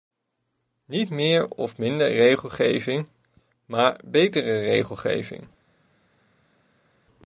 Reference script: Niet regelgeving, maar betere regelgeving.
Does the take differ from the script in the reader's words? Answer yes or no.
yes